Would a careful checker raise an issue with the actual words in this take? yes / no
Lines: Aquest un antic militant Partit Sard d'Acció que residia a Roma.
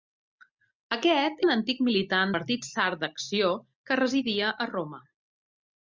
no